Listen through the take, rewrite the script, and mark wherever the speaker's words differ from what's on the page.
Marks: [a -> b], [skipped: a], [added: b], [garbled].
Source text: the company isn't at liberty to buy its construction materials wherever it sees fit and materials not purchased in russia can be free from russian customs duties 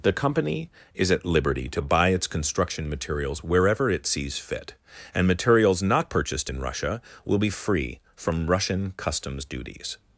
the company [isn't -> is] at liberty to buy its construction materials wherever it sees fit and materials not purchased in russia [can -> will] be free from russian customs duties